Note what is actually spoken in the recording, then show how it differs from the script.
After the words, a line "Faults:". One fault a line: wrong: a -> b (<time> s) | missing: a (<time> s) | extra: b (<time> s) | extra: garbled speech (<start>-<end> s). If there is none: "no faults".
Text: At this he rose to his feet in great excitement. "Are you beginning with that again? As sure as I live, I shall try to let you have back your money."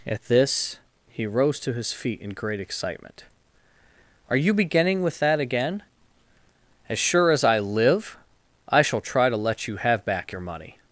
At this he rose to his feet in great excitement. "Are you beginning with that again? As sure as I live, I shall try to let you have back your money."
Faults:
no faults